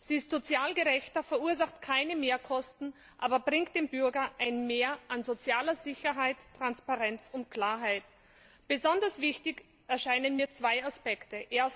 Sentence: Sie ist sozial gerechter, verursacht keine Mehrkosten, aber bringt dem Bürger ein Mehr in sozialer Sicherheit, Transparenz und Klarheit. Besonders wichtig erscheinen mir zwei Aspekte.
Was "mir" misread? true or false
false